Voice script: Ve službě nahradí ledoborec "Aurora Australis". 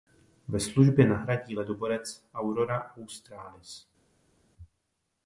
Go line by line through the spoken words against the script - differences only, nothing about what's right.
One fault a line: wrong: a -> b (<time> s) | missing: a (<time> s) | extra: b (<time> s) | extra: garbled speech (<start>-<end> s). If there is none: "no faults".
no faults